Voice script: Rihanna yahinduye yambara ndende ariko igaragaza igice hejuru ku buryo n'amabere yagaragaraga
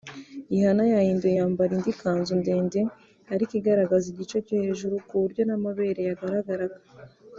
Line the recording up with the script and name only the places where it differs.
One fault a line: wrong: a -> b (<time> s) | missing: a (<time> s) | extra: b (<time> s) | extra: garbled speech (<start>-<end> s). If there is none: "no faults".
extra: indi kanzu (1.8 s)
extra: cyo (4.5 s)